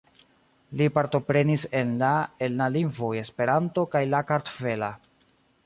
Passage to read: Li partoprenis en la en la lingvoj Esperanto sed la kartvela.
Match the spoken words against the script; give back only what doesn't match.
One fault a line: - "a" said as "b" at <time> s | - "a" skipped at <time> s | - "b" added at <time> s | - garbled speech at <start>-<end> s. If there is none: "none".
- "sed" said as "kaj" at 4.0 s